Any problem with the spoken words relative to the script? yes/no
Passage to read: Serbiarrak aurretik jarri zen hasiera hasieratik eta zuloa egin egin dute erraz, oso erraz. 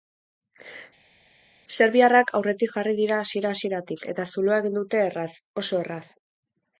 yes